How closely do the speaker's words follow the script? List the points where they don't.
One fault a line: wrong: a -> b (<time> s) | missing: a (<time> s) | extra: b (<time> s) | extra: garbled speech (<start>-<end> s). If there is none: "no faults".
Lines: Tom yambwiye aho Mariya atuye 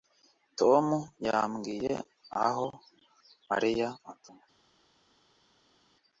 no faults